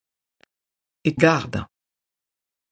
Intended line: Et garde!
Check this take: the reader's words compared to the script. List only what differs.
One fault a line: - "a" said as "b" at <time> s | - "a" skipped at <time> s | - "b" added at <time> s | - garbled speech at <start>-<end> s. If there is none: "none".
none